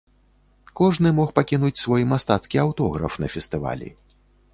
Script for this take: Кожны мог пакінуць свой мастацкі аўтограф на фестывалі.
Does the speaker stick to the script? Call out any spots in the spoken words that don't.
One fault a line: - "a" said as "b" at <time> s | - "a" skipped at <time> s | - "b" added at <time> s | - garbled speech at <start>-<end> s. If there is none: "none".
none